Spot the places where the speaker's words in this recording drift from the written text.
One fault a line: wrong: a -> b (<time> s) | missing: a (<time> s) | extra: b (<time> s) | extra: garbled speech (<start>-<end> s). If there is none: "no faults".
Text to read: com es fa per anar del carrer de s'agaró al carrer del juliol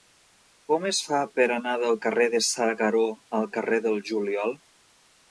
no faults